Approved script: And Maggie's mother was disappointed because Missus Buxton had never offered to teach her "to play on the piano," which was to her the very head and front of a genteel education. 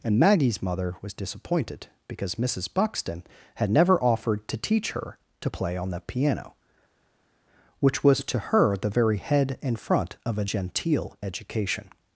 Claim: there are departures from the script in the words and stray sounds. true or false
false